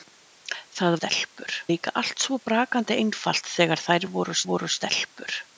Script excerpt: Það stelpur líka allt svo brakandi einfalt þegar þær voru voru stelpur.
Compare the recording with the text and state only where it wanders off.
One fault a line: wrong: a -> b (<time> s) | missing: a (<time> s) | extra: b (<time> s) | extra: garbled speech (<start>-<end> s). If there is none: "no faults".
no faults